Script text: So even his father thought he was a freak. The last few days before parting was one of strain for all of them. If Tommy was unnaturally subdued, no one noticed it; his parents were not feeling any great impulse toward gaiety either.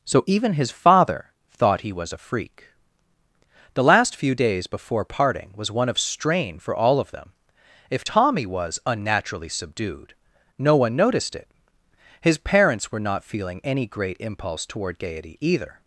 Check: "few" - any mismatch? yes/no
no